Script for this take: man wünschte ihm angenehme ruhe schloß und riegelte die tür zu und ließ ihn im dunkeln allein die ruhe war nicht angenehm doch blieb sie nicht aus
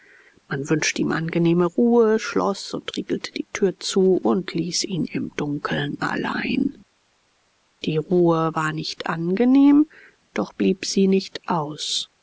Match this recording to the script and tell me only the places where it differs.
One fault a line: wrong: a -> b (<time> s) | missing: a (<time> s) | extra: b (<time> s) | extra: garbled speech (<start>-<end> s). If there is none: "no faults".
no faults